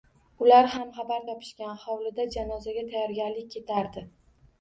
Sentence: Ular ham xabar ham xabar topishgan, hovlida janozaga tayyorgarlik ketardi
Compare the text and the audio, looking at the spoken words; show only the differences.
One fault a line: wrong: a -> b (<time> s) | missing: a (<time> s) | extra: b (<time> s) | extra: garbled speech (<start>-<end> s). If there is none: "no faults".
missing: ham xabar (1.2 s)